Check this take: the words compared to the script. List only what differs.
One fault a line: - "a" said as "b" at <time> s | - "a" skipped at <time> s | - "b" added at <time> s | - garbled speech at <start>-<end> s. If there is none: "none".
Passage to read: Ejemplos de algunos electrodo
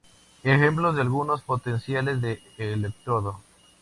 - "potenciales de" added at 1.4 s